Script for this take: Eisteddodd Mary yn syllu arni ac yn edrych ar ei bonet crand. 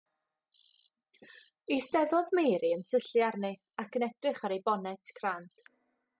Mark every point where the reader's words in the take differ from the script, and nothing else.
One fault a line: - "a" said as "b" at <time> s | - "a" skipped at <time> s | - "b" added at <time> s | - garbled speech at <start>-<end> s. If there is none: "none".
none